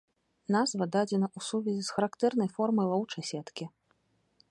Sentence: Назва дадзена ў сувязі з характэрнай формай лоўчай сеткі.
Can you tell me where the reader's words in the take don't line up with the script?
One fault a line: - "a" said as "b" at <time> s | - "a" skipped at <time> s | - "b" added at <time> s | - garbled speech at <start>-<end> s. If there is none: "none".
none